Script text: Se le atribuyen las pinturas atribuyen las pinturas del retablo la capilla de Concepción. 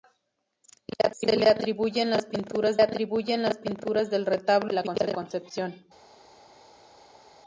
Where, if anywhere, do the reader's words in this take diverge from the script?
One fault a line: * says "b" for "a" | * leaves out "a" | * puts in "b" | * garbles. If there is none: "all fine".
all fine